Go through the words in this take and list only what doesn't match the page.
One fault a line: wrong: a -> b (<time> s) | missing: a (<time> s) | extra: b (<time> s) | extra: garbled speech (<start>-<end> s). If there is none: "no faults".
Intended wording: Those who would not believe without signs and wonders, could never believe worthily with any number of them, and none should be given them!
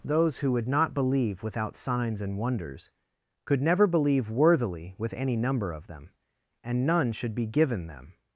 no faults